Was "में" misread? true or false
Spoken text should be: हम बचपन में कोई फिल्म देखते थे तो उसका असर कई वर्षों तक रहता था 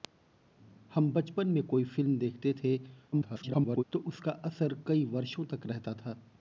false